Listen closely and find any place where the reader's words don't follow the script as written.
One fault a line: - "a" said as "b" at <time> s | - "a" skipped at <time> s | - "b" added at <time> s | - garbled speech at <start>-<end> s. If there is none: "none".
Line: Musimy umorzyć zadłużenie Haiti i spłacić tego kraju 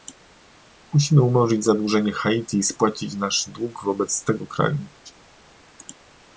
- "nasz dług wobec" added at 3.1 s